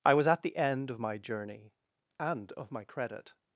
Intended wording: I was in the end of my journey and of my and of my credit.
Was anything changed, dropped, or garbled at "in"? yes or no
yes